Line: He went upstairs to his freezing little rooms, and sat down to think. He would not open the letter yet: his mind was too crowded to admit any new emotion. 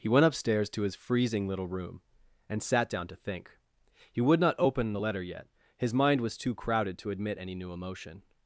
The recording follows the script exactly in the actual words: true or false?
false